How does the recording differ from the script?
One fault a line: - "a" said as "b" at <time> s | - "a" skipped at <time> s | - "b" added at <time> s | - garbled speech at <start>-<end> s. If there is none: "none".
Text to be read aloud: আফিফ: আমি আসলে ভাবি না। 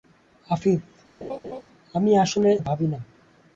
none